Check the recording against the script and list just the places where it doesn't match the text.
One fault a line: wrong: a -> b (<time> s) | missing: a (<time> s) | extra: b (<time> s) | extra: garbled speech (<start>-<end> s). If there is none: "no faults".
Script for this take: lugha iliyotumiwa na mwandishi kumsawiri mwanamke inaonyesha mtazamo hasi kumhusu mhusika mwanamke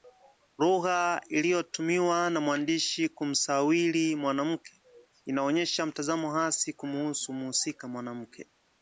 no faults